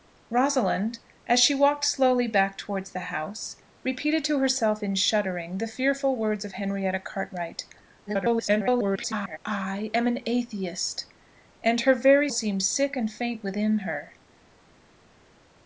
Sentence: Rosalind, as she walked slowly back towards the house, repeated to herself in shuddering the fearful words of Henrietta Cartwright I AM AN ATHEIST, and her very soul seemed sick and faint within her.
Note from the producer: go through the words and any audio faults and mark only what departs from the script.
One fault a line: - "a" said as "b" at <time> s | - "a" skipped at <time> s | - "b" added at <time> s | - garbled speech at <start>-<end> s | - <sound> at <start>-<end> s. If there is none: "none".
- garbled speech at 8.1-9.4 s
- "soul" skipped at 12.3 s